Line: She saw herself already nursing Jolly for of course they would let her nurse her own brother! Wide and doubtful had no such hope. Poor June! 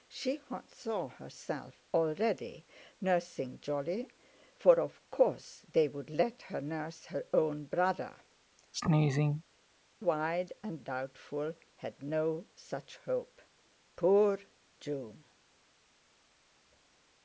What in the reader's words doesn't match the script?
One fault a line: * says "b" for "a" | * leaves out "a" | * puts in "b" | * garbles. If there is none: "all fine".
all fine